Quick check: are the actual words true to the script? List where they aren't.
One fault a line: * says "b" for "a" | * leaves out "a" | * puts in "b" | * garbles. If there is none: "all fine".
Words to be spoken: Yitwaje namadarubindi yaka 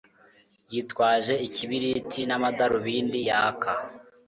* puts in "ikibiriti"